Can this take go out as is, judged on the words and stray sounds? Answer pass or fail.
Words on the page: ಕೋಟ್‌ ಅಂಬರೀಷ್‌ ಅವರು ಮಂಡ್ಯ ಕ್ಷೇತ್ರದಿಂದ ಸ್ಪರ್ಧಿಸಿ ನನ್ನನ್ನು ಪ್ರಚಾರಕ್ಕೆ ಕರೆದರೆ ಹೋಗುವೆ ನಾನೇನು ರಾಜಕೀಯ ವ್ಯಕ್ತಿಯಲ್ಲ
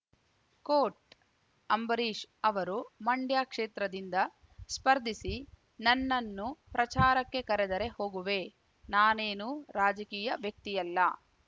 pass